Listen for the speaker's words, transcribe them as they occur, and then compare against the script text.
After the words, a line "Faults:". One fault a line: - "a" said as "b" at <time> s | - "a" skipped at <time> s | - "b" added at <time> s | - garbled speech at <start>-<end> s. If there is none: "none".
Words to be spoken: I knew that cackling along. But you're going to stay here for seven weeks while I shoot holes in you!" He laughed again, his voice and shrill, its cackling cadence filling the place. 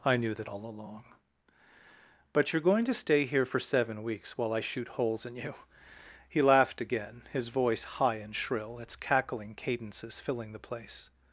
I knew that all along. But you're going to stay here for seven weeks while I shoot holes in you!" He laughed again, his voice high and shrill, its cackling cadences filling the place.
Faults:
- "cackling" said as "all" at 0.5 s
- "high" added at 7.8 s
- "cadence" said as "cadences" at 9.5 s